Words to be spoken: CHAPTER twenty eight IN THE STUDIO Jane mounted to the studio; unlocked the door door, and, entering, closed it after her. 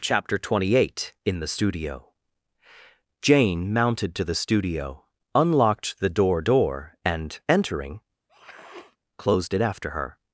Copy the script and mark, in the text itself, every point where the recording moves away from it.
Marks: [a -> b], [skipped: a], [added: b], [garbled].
CHAPTER twenty eight IN THE STUDIO Jane mounted to the studio; unlocked the door door, and, entering, closed it after her.